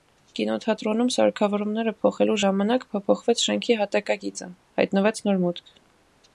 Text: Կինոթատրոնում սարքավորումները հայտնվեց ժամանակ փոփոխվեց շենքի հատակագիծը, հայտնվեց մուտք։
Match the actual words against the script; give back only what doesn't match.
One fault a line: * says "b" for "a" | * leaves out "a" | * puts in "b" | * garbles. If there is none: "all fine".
* says "փոխելու" for "հայտնվեց"
* puts in "նոր"